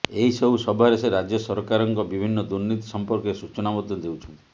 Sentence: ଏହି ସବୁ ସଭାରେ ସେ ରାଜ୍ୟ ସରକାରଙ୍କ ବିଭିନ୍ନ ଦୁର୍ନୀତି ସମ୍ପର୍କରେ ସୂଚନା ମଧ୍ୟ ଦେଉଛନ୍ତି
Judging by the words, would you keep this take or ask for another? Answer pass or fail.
pass